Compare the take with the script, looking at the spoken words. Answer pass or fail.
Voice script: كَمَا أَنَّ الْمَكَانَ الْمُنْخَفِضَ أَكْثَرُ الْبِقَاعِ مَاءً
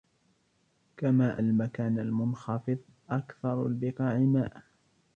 fail